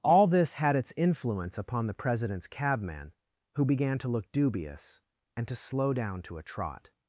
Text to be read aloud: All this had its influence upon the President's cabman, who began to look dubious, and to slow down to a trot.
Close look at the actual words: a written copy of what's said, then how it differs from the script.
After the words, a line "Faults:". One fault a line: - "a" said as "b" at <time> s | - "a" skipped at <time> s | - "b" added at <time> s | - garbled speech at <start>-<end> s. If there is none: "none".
All this had its influence upon the President's cabman, who began to look dubious, and to slow down to a trot.
Faults:
none